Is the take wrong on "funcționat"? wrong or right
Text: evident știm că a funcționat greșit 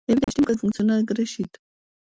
right